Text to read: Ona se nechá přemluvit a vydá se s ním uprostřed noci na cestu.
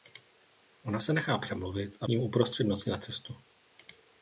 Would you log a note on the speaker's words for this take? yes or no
yes